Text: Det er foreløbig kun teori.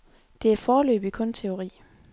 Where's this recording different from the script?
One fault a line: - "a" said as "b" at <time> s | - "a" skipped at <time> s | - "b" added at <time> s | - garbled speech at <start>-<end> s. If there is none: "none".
none